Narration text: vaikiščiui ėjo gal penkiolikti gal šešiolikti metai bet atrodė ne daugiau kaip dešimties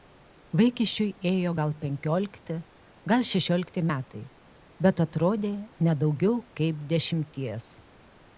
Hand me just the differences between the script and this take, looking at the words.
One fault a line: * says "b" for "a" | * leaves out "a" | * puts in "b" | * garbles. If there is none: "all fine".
all fine